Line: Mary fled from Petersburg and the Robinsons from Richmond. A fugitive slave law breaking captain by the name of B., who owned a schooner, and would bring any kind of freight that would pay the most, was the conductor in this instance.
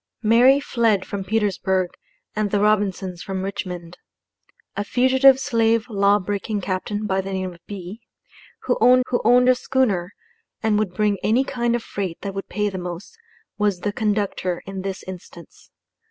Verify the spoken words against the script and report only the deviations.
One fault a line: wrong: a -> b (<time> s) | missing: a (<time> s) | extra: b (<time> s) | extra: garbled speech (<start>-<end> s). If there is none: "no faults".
extra: who owned (9.1 s)